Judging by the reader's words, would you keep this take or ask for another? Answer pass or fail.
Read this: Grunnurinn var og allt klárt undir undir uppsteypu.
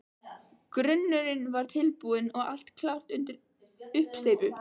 fail